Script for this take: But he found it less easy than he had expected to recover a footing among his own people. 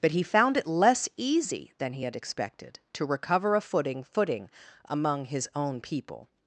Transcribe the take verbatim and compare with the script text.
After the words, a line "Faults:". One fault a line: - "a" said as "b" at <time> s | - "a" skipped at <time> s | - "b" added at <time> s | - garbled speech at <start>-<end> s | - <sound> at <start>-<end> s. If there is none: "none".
But he found it less easy than he had expected to recover a footing footing among his own people.
Faults:
- "footing" added at 4.0 s